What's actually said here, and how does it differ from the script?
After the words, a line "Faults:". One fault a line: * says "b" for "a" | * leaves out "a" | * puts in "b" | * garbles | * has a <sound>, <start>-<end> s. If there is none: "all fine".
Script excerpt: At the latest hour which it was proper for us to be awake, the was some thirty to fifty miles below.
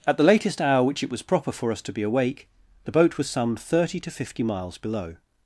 At the latest hour which it was proper for us to be awake, the boat was some thirty to fifty miles below.
Faults:
* puts in "boat"